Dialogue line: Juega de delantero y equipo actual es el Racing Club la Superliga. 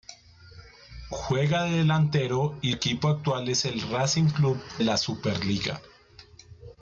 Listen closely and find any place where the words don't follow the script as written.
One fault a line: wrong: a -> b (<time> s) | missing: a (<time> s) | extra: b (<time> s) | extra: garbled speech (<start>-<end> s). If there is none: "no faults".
no faults